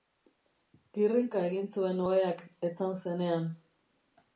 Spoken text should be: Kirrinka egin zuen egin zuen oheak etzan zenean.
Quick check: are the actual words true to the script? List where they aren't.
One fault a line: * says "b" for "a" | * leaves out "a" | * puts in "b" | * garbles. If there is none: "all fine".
* leaves out "egin zuen"